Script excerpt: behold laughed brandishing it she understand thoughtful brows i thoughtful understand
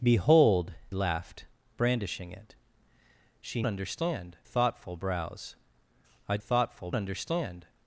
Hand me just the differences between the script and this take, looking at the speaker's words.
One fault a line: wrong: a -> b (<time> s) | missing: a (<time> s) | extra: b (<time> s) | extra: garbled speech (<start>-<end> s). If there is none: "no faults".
no faults